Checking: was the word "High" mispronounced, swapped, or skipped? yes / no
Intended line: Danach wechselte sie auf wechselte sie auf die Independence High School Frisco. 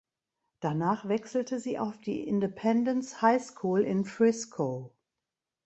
no